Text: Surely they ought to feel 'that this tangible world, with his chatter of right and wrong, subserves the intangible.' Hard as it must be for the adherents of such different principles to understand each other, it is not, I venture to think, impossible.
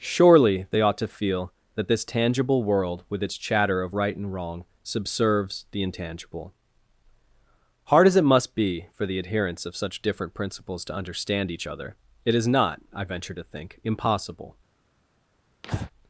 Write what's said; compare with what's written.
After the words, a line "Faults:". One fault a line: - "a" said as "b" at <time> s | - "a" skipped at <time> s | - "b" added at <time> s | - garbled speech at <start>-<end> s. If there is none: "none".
Surely they ought to feel 'that this tangible world, with its chatter of right and wrong, subserves the intangible.' Hard as it must be for the adherents of such different principles to understand each other, it is not, I venture to think, impossible.
Faults:
- "his" said as "its" at 3.2 s